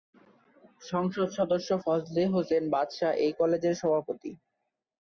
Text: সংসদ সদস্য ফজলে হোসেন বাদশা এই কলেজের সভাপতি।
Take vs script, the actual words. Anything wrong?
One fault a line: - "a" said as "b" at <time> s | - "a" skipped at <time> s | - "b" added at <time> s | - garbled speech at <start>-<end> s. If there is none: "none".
none